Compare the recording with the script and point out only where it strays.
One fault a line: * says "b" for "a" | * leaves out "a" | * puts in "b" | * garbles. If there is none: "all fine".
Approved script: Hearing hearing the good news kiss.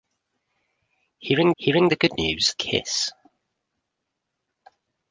all fine